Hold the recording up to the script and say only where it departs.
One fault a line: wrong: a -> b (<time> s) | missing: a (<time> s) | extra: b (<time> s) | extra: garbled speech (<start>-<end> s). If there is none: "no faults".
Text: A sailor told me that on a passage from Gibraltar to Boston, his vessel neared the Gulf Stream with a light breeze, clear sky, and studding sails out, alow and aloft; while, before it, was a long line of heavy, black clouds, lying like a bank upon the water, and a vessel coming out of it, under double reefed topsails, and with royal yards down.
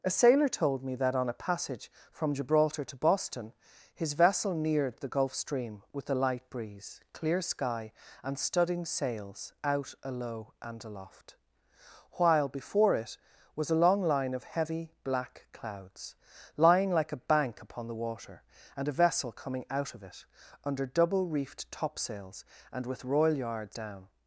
no faults